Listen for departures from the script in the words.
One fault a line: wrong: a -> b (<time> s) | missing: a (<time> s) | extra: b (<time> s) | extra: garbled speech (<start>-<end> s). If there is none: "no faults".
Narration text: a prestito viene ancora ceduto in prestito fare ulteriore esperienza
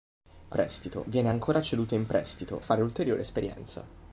no faults